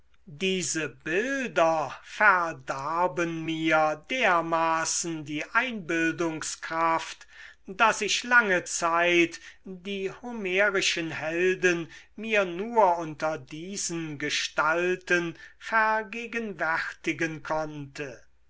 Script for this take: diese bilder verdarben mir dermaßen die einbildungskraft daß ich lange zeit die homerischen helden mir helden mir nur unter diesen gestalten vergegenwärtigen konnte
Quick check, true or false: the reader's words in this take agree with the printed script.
false